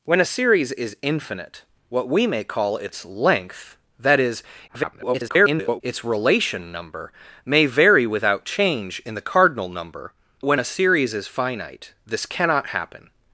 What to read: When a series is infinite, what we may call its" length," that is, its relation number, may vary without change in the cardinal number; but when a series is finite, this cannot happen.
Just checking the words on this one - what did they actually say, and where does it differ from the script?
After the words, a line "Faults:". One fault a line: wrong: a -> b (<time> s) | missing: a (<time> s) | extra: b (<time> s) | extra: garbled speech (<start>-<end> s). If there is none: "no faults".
When a series is infinite, what we may call its" length," that is, [garbled] its relation number, may vary without change in the cardinal number; when a series is finite, this cannot happen.
Faults:
extra: garbled speech (4.7-5.8 s)
missing: but (10.1 s)